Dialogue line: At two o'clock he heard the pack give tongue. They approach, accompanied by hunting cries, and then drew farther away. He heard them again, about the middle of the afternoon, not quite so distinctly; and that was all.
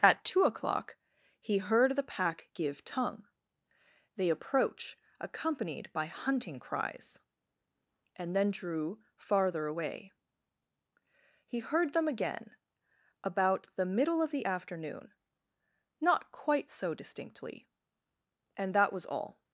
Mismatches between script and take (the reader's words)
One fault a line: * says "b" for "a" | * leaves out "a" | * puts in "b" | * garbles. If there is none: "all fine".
all fine